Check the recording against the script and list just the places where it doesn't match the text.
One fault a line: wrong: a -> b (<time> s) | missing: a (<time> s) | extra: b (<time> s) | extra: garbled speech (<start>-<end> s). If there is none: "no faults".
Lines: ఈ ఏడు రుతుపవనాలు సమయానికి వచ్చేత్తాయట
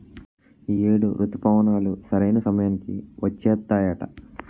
extra: సరైన (2.1 s)